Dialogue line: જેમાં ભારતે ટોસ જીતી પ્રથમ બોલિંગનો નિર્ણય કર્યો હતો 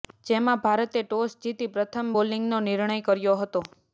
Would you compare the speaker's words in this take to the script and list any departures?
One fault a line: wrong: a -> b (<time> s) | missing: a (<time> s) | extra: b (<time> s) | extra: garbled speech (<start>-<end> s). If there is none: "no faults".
no faults